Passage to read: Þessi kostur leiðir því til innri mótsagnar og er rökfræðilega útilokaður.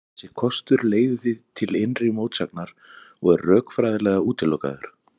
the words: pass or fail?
pass